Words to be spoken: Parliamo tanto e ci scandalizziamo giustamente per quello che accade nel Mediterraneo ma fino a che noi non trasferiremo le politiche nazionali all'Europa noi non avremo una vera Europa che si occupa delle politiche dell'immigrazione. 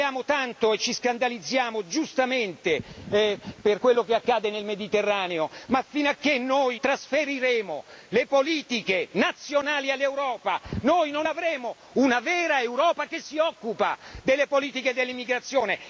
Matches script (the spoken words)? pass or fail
fail